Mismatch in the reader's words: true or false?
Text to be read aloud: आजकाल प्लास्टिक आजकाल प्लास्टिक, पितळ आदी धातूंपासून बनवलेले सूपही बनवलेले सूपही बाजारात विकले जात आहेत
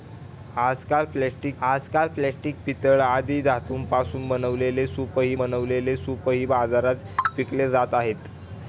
false